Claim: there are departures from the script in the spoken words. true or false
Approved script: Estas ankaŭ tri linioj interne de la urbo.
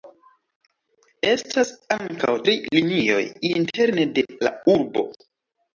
false